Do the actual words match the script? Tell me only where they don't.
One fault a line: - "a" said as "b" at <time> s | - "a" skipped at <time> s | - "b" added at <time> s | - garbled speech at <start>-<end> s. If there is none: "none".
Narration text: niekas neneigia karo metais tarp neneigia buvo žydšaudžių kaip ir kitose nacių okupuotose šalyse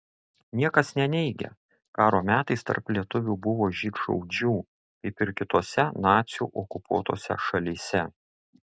- "neneigia" said as "lietuvių" at 3.0 s